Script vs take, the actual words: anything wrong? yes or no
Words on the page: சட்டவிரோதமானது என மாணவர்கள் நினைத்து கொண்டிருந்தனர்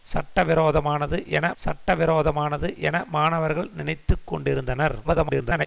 yes